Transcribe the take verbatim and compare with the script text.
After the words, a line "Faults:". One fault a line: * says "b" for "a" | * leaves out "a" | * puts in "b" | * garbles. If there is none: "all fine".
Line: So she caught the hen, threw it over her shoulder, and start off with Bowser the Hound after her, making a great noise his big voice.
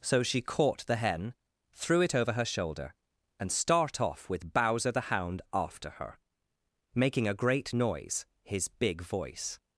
So she caught the hen, threw it over her shoulder, and start off with Bowser the Hound after her, making a great noise his big voice.
Faults:
all fine